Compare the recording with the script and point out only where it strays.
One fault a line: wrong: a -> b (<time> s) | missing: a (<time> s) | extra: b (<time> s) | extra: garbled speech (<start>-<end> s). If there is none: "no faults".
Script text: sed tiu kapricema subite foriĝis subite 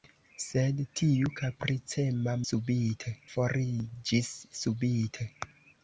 no faults